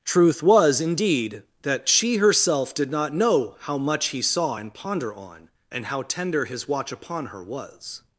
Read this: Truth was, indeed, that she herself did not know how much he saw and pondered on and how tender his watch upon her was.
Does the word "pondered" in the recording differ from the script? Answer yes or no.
yes